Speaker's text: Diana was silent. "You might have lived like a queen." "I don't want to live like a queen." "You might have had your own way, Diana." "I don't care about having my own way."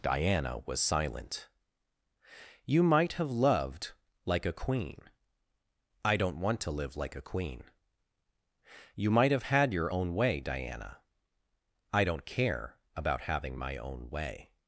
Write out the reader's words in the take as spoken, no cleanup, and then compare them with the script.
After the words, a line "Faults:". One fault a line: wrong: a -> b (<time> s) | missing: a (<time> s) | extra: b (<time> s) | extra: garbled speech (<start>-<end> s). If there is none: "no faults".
Diana was silent. "You might have loved like a queen." "I don't want to live like a queen." "You might have had your own way, Diana." "I don't care about having my own way."
Faults:
wrong: lived -> loved (3.3 s)